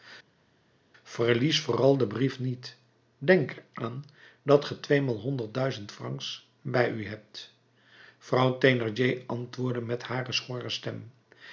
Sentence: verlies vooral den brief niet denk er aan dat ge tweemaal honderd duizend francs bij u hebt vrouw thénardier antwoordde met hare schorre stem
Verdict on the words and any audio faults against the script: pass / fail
pass